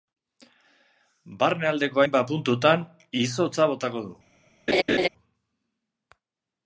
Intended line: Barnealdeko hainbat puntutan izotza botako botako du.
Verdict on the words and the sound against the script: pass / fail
fail